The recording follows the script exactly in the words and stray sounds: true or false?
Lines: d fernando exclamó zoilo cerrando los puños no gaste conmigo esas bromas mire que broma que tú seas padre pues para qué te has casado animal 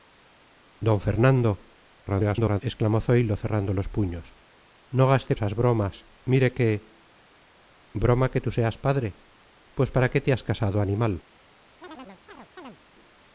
false